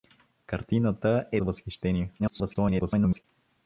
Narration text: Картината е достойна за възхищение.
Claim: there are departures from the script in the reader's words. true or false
true